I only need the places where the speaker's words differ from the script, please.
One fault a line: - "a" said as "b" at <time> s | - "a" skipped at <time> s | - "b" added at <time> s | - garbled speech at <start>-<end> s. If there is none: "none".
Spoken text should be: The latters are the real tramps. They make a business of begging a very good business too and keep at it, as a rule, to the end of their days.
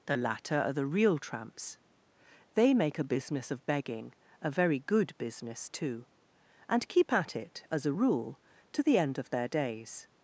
- "latters" said as "latter" at 0.2 s